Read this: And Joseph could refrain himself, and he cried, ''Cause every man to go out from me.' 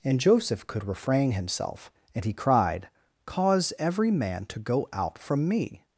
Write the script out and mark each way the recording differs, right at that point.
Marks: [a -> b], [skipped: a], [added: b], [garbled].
And Joseph could refrain himself, and he cried, ''Cause every man to go out from me.'